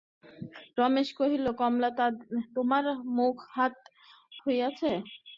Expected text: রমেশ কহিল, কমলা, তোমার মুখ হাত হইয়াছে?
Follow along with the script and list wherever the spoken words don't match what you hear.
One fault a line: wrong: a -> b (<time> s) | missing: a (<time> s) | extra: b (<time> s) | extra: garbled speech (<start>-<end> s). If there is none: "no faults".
no faults